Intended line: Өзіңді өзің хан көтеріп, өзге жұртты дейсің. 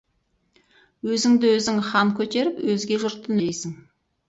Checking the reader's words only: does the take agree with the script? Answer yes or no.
yes